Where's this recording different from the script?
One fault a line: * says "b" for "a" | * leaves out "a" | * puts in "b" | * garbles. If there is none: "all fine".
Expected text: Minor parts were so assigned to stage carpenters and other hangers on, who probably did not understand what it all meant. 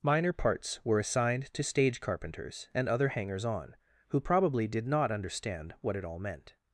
* leaves out "so"